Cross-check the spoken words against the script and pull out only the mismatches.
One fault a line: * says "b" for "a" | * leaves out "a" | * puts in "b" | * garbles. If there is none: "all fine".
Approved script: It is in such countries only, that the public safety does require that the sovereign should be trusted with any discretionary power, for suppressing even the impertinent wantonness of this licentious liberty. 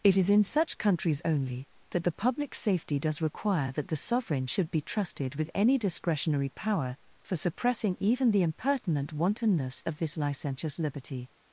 all fine